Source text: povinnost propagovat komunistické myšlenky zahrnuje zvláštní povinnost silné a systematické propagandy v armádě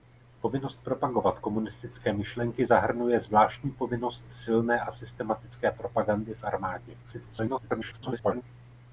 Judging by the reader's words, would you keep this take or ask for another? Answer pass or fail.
fail